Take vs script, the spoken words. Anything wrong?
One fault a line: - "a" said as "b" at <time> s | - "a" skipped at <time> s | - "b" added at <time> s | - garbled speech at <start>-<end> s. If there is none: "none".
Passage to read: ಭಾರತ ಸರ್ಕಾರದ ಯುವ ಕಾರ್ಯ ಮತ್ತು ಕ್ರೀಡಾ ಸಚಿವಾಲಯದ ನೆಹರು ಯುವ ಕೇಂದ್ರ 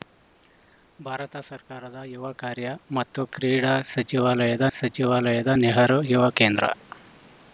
- "ಸಚಿವಾಲಯದ" added at 4.8 s